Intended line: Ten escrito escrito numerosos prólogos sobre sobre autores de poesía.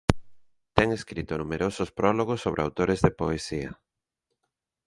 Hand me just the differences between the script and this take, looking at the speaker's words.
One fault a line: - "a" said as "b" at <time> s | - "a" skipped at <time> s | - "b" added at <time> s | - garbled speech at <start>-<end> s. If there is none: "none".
- "escrito" skipped at 1.4 s
- "sobre" skipped at 2.6 s